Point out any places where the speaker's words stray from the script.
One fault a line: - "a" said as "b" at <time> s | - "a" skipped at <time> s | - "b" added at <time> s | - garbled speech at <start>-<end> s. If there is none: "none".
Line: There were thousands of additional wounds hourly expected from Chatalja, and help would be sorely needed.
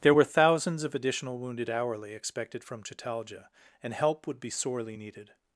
- "wounds" said as "wounded" at 1.4 s